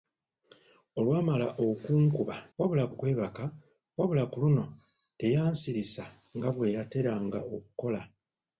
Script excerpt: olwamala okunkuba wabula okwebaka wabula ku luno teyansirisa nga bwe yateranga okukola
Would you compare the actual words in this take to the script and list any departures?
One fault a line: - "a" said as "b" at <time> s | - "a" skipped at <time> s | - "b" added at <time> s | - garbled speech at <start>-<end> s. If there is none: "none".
none